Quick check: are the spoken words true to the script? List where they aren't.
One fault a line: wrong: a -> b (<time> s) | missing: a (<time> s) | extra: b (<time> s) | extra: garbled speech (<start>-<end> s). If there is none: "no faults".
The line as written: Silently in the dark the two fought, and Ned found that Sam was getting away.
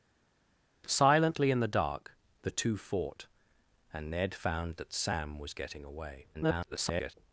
extra: garbled speech (6.3-7.1 s)